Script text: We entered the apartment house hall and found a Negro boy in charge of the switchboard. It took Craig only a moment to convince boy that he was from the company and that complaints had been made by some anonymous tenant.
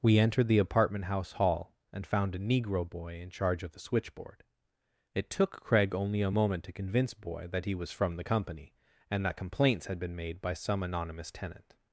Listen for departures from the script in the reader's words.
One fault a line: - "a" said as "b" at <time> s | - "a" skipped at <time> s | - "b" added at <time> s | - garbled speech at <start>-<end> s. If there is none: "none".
none